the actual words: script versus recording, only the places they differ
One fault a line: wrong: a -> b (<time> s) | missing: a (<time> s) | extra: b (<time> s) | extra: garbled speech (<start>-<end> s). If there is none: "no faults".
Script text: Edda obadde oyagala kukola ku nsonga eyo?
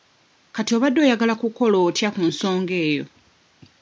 wrong: Edda -> Kati (0.6 s)
extra: otya (1.9 s)